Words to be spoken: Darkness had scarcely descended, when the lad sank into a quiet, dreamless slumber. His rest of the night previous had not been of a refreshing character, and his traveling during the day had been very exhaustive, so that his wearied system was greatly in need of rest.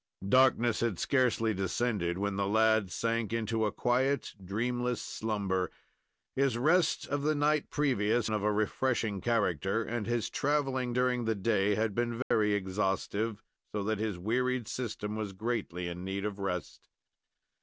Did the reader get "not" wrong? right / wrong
wrong